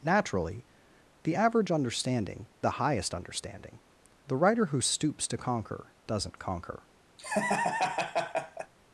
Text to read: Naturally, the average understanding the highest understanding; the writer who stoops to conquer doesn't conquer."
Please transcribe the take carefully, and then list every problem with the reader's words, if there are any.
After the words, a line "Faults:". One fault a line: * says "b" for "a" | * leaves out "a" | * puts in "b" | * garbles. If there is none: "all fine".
Naturally, the average understanding the highest understanding; the writer who stoops to conquer doesn't conquer."
Faults:
all fine